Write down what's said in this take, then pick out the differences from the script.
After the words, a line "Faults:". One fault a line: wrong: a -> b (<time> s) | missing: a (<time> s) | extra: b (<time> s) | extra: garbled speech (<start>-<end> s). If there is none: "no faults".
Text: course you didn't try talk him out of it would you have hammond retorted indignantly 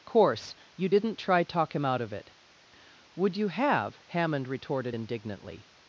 course you didn't try talk him out of it would you have hammond retorted indignantly
Faults:
no faults